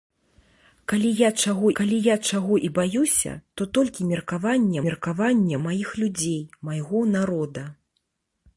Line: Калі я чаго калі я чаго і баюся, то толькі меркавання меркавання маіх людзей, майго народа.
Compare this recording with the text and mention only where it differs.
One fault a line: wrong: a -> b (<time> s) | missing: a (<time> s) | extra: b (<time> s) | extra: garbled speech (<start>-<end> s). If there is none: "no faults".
no faults